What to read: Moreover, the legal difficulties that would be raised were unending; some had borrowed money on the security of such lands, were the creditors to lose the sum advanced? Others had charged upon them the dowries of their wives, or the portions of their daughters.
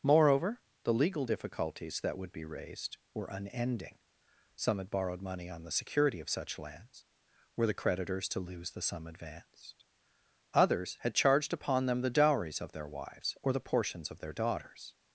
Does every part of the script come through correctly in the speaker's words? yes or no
yes